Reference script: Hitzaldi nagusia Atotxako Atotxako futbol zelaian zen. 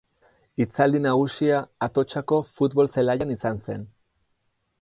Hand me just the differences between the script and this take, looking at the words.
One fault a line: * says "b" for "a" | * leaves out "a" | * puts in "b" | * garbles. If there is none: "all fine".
* leaves out "Atotxako"
* puts in "izan"